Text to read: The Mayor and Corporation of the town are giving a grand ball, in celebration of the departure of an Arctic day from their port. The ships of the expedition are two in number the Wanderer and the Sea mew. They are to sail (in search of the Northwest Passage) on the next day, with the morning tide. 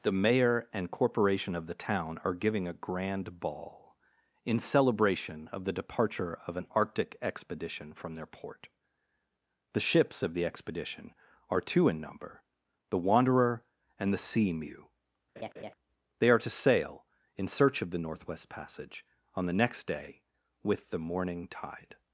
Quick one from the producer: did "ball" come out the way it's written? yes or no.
yes